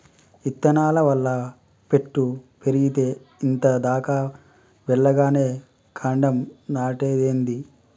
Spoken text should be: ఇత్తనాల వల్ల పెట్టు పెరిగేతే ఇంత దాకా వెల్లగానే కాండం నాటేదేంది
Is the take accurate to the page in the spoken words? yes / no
yes